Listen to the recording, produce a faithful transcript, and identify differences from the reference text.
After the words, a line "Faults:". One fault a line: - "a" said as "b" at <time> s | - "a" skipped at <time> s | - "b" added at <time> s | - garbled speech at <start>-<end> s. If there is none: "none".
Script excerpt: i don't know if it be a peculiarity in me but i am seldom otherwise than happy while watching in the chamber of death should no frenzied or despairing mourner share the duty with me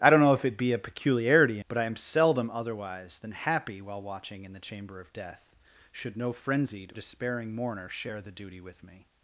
i don't know if it be a peculiarity but i am seldom otherwise than happy while watching in the chamber of death should no frenzied despairing mourner share the duty with me
Faults:
- "in me" skipped at 1.6 s
- "or" skipped at 6.9 s